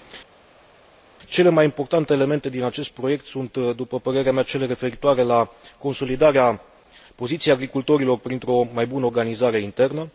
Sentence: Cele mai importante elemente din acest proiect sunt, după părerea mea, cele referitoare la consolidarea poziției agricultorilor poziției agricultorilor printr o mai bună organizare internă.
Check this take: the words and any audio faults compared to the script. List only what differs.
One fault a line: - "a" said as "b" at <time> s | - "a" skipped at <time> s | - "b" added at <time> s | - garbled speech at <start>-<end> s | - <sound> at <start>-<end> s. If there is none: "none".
- "poziției agricultorilor" skipped at 8.2 s